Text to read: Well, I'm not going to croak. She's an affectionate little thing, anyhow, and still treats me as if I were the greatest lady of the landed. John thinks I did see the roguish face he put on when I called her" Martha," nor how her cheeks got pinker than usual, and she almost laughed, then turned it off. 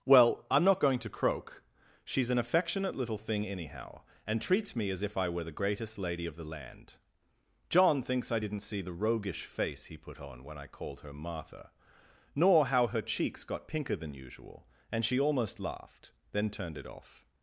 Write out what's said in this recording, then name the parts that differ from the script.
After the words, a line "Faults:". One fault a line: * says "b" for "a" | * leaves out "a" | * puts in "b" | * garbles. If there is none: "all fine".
Well, I'm not going to croak. She's an affectionate little thing, anyhow, and treats me as if I were the greatest lady of the land. John thinks I didn't see the roguish face he put on when I called her" Martha," nor how her cheeks got pinker than usual, and she almost laughed, then turned it off.
Faults:
* leaves out "still"
* says "land" for "landed"
* says "didn't" for "did"